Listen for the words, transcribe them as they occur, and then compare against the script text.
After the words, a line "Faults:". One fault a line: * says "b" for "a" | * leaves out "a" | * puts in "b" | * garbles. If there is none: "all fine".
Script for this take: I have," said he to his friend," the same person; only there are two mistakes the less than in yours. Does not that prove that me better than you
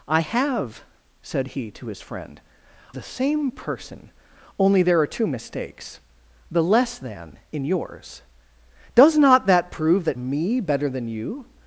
I have," said he to his friend," the same person; only there are two mistakes the less than in yours. Does not that prove that me better than you
Faults:
all fine